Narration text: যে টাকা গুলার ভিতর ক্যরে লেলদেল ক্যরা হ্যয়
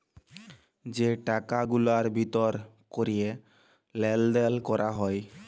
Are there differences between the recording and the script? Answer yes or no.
no